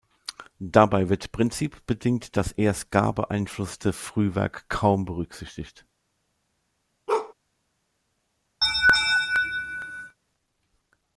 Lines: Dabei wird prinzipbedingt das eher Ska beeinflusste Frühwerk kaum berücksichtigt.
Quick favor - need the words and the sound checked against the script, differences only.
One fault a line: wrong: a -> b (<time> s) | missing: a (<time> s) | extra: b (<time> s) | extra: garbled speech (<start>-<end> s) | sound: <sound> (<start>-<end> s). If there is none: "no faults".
sound: bark (7.1-7.3 s)
sound: laugh (8.6-10.2 s)